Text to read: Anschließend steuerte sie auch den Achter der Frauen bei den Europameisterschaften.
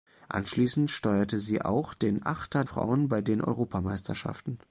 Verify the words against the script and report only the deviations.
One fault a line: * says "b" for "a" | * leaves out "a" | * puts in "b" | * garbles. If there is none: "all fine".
* leaves out "der"